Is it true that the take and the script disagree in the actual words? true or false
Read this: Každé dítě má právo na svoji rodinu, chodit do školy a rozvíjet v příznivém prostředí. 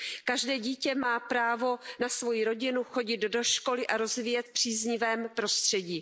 false